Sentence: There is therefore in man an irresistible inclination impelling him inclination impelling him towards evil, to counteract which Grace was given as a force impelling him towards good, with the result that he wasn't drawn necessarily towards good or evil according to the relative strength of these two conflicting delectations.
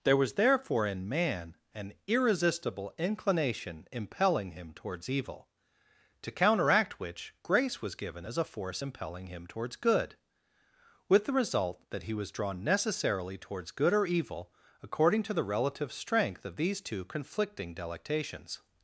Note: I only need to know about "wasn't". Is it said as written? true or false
false